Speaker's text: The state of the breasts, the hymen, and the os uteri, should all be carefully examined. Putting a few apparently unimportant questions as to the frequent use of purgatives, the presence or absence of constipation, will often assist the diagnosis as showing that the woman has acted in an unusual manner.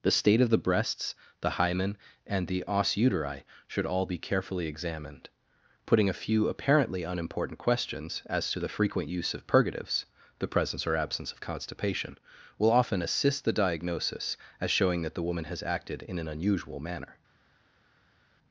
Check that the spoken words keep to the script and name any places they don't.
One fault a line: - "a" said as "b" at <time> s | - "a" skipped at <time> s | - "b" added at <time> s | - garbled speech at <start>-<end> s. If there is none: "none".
none